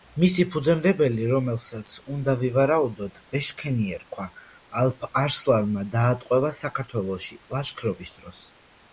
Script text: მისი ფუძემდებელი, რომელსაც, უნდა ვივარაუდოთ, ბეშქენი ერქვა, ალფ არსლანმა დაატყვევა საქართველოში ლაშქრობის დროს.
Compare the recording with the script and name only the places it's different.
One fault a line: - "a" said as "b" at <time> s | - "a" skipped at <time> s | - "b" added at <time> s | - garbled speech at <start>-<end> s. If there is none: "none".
none